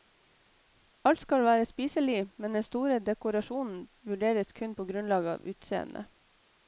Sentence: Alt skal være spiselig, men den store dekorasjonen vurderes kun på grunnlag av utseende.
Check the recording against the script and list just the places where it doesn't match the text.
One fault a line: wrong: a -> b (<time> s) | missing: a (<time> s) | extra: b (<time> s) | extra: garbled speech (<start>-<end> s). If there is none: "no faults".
no faults